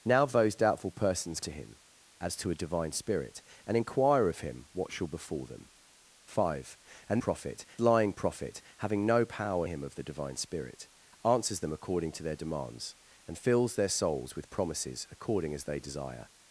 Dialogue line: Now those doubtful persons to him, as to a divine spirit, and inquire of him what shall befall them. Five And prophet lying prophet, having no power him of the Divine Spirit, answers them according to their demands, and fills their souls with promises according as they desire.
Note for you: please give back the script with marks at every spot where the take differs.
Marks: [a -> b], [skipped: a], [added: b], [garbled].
Now those doubtful persons to him, as to a divine spirit, and inquire of him what shall befall them. Five And prophet lying prophet, having no power him of the Divine Spirit, answers them according to their demands, and fills their souls with promises according as they desire.